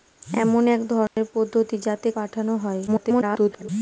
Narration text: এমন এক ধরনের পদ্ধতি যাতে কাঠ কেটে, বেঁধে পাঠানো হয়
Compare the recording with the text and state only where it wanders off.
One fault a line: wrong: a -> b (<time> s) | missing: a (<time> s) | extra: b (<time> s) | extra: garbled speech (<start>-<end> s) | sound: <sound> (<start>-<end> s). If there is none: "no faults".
sound: dropout (1.1-1.2 s)
missing: কাঠ কেটে বেঁধে (2.1 s)
extra: garbled speech (2.9-3.7 s)